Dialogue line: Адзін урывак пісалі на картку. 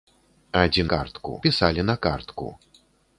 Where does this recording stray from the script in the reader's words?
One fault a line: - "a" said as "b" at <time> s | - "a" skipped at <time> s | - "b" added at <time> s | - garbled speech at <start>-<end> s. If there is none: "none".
- "урывак" said as "картку" at 0.9 s